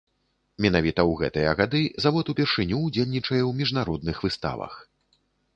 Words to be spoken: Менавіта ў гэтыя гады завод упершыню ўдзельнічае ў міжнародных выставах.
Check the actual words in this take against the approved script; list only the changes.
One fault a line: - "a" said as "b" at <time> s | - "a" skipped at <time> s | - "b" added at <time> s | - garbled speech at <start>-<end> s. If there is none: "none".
none